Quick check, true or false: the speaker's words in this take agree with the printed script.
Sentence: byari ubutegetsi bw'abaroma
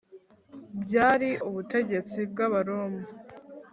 true